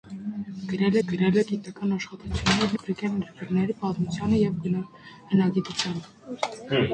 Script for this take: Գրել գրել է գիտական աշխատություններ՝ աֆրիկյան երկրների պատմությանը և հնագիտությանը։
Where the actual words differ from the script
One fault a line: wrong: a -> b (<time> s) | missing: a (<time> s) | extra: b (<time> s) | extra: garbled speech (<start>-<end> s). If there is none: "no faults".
no faults